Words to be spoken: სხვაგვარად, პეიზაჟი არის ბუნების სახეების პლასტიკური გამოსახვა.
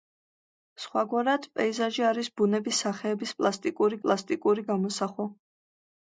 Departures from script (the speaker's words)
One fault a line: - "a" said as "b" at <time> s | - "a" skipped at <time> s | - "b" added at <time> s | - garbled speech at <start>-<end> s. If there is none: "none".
- "პლასტიკური" added at 4.1 s